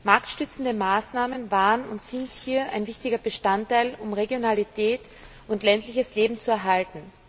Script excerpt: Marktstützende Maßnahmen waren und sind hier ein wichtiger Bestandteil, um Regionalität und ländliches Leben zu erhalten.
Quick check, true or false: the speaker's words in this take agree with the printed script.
true